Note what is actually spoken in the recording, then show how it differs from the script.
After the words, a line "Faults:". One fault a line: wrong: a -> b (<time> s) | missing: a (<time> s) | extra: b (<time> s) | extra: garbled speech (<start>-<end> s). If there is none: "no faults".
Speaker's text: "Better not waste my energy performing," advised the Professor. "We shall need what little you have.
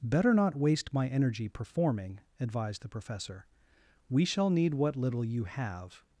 "Better not waste my energy performing," advised the Professor. "We shall need what little you have.
Faults:
no faults